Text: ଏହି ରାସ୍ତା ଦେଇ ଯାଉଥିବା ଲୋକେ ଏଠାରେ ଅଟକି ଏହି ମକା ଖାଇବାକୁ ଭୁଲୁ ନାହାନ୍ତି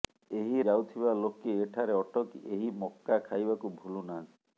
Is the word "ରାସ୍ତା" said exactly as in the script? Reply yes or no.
no